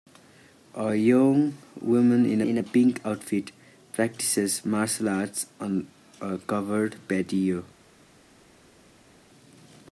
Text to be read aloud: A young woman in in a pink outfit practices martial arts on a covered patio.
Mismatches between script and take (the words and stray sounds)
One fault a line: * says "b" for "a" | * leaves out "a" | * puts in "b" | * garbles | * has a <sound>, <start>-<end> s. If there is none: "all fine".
all fine